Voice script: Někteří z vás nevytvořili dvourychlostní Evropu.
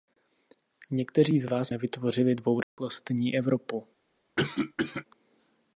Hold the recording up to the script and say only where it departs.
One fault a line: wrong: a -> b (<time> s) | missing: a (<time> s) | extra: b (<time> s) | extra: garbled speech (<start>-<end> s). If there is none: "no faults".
no faults